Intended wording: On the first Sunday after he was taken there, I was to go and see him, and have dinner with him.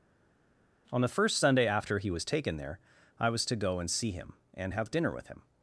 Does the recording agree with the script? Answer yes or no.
yes